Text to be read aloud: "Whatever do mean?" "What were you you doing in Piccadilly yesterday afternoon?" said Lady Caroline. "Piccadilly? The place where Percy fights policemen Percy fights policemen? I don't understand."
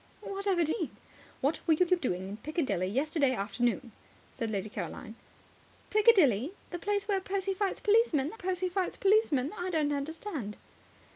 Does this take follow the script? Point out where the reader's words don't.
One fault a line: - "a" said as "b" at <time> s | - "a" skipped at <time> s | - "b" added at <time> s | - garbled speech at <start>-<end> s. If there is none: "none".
none